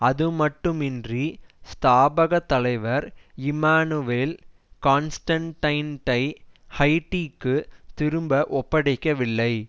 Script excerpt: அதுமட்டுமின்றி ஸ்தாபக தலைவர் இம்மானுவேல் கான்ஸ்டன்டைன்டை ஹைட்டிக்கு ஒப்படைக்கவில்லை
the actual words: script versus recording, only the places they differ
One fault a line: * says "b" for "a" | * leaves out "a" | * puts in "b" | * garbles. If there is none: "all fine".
* puts in "திரும்ப"